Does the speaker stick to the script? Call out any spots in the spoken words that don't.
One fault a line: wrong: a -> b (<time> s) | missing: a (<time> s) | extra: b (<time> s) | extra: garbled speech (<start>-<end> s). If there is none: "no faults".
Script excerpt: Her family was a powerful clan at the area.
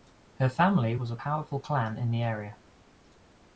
wrong: at -> in (2.0 s)